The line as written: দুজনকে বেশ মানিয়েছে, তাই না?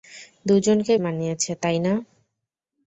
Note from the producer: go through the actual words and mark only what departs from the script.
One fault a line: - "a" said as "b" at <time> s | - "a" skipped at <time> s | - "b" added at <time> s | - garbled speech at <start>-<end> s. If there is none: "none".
- "বেশ" skipped at 0.9 s